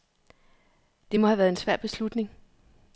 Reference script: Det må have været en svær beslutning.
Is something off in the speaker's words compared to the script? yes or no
no